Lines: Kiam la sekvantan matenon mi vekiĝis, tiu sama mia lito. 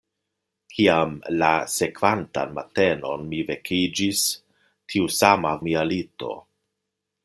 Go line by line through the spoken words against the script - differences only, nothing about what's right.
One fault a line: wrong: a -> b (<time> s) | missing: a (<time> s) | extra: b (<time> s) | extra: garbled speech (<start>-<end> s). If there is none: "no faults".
no faults